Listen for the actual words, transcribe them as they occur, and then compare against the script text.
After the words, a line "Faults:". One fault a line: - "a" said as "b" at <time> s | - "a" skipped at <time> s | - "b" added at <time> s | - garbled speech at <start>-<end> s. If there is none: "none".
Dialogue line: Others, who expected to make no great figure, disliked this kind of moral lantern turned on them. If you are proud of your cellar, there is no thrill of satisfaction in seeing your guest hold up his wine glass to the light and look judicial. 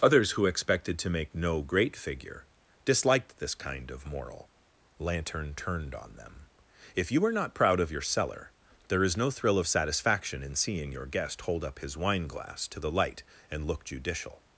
Others, who expected to make no great figure, disliked this kind of moral lantern turned on them. If you are not proud of your cellar, there is no thrill of satisfaction in seeing your guest hold up his wine glass to the light and look judicial.
Faults:
- "not" added at 7.3 s